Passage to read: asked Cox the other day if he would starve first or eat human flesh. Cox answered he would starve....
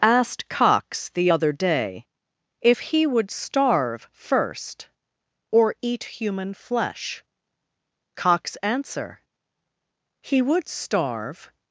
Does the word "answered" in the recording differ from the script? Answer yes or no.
yes